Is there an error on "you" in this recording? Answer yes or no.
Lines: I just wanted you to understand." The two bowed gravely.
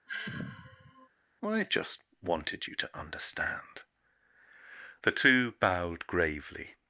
no